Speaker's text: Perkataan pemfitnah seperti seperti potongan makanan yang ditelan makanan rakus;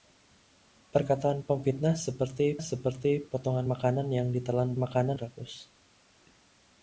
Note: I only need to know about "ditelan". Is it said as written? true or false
true